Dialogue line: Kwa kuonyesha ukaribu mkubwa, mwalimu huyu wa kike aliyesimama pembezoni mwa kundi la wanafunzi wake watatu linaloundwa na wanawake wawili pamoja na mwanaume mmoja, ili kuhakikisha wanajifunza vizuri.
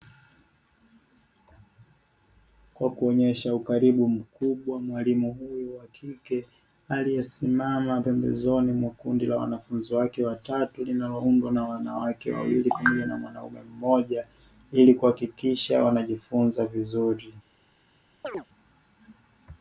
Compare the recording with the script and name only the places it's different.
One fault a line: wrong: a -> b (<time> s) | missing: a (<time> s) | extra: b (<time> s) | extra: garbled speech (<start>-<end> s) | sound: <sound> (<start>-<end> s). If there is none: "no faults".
sound: chirp (18.2-18.5 s)